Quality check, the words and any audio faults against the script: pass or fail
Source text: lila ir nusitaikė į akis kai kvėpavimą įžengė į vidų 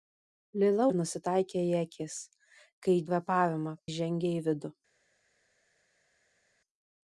pass